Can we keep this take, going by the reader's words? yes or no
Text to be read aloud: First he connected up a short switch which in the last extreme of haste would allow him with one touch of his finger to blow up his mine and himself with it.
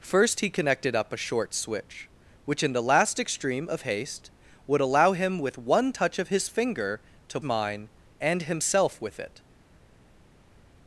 no